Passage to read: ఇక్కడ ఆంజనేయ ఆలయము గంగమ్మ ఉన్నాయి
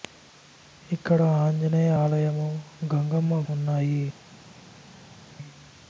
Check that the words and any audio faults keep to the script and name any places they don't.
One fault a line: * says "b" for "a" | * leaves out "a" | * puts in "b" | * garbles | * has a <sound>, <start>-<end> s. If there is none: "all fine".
all fine